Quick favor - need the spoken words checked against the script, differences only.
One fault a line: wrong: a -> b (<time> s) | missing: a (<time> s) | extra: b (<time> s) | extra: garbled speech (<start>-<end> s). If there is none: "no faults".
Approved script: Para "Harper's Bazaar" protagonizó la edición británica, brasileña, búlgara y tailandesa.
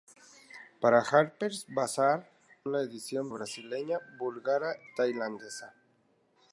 missing: protagonizó (2.3 s)
missing: británica (3.3 s)
missing: y (4.8 s)